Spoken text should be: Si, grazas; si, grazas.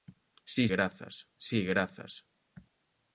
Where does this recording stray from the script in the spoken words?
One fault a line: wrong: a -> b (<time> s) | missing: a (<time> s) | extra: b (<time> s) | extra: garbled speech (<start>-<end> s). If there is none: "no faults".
no faults